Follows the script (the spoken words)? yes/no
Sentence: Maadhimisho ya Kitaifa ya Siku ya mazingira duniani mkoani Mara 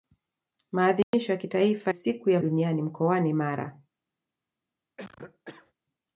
no